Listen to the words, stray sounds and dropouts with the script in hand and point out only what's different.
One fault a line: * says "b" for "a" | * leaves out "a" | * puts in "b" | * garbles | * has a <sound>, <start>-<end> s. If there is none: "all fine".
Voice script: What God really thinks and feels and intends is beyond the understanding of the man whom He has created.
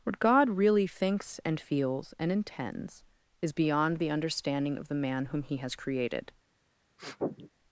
* has a sniff, 7.0-7.5 s